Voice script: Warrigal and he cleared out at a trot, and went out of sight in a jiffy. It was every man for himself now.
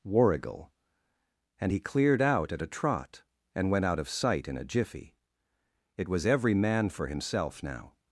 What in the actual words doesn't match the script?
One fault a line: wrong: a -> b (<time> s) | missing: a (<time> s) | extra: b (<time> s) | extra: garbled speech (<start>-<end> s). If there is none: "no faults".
no faults